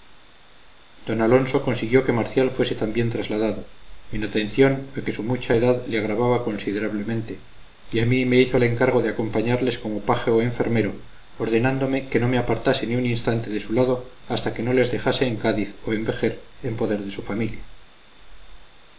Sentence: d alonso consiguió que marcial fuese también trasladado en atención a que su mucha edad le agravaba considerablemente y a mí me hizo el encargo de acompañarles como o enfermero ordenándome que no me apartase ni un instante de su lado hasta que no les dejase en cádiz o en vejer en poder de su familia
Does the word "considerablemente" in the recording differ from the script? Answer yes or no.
no